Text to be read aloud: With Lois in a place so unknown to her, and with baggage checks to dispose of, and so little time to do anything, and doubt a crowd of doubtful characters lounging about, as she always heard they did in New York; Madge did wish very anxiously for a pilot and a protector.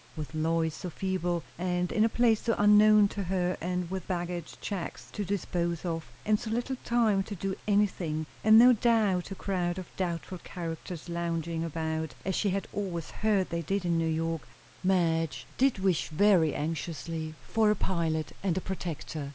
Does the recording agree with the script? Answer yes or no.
no